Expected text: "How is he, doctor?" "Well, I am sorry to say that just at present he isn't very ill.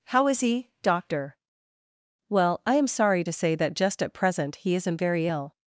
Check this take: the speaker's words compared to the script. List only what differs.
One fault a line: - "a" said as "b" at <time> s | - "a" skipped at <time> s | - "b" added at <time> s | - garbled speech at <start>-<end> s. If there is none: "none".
none